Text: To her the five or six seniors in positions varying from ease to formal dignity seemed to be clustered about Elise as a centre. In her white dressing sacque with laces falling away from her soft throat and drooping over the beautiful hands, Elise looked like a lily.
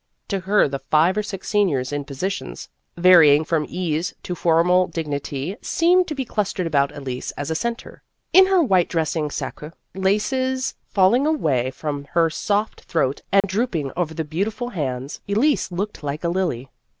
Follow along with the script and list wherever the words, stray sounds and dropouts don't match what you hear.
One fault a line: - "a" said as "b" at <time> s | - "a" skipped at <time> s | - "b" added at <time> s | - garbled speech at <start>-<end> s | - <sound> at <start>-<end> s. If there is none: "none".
- "with" skipped at 9.7 s
- dropout at 13.4-13.4 s